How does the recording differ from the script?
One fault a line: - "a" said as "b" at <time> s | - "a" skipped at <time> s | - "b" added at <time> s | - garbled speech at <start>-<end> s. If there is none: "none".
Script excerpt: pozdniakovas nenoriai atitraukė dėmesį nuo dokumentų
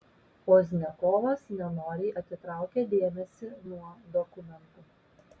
none